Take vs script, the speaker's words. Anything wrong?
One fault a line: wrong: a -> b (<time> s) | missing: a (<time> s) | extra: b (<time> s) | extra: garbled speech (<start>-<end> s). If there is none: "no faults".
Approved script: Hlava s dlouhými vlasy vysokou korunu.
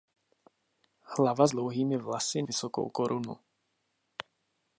no faults